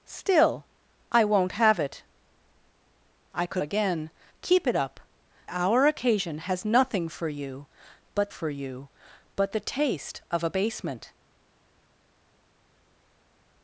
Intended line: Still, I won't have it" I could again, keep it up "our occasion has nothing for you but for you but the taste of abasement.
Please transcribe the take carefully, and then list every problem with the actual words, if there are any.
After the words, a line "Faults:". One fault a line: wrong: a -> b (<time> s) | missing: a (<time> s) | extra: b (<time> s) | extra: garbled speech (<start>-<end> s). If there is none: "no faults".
Still, I won't have it" I could again, keep it up "our occasion has nothing for you but for you but the taste of abasement.
Faults:
no faults